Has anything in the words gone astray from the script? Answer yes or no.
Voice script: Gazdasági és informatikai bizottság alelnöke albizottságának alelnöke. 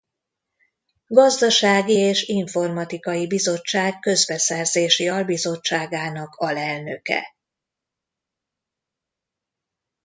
yes